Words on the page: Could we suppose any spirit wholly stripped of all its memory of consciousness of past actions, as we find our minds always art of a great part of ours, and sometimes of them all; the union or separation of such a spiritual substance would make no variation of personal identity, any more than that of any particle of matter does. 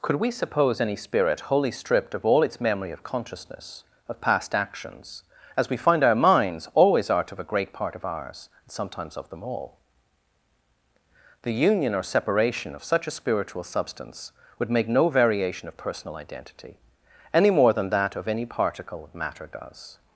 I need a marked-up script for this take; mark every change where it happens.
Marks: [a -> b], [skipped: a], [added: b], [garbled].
Could we suppose any spirit wholly stripped of all its memory of consciousness of past actions, as we find our minds always art of a great part of ours, and sometimes of them all; the union or separation of such a spiritual substance would make no variation of personal identity, any more than that of any particle of matter does.